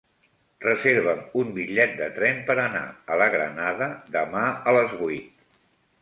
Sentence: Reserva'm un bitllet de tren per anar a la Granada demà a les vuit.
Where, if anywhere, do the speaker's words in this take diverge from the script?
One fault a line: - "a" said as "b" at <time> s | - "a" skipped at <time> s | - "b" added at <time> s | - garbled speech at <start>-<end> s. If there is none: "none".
none